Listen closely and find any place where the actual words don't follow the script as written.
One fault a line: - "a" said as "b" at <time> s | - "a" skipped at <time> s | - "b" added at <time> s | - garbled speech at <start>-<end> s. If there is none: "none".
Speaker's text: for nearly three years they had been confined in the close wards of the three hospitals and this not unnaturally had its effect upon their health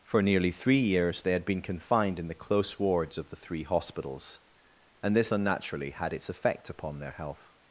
- "not" skipped at 5.3 s